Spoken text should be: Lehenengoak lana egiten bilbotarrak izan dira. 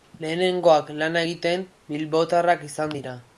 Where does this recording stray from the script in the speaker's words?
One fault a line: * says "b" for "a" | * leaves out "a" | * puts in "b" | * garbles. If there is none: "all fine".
all fine